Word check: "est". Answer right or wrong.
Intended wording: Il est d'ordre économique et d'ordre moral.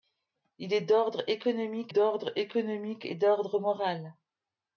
right